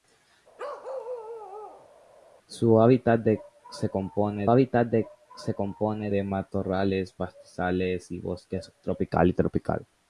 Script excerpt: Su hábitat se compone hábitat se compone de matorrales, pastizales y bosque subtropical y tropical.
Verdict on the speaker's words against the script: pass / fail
pass